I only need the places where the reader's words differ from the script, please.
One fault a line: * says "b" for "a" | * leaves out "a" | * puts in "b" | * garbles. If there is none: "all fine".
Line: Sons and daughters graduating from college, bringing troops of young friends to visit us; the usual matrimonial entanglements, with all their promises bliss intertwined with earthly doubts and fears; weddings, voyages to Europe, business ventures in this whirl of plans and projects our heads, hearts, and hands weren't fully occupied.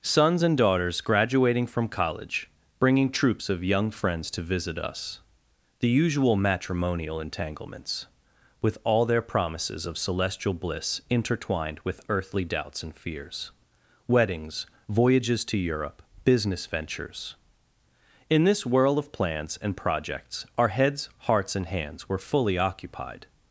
* puts in "of celestial"
* says "were" for "weren't"